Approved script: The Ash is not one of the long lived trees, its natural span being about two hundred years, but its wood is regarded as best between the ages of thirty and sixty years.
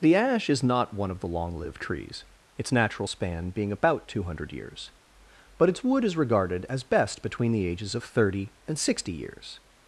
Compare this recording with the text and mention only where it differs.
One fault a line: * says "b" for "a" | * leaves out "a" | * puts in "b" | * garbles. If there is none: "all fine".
all fine